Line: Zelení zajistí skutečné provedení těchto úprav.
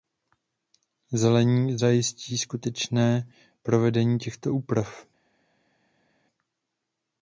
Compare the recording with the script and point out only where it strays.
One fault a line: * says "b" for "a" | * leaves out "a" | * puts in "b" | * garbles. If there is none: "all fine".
all fine